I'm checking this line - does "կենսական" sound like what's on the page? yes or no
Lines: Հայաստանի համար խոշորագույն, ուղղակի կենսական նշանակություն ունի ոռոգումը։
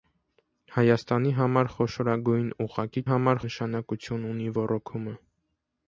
no